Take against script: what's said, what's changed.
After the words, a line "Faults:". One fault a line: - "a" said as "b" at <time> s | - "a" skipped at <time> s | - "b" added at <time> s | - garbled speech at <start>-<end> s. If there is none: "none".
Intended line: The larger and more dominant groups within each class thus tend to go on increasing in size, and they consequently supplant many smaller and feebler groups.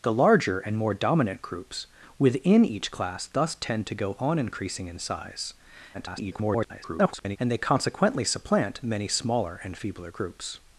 The larger and more dominant groups within each class thus tend to go on increasing in size, [garbled] and they consequently supplant many smaller and feebler groups.
Faults:
- garbled speech at 5.9-7.4 s